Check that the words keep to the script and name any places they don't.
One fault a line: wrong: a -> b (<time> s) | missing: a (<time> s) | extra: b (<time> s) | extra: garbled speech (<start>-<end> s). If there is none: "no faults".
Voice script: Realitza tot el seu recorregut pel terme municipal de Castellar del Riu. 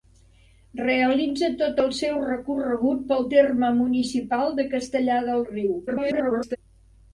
extra: garbled speech (5.9-6.6 s)